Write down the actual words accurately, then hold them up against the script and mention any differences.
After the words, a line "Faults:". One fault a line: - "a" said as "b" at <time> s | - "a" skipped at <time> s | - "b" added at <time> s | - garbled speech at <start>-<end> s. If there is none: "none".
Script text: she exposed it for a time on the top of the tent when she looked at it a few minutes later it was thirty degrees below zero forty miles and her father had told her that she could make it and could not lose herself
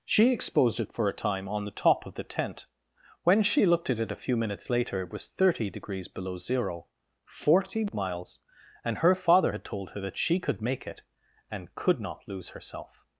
she exposed it for a time on the top of the tent when she looked at it a few minutes later it was thirty degrees below zero forty miles and her father had told her that she could make it and could not lose herself
Faults:
none